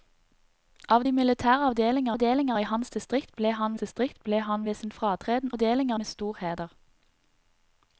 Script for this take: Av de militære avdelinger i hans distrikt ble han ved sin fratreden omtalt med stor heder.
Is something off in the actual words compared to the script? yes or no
yes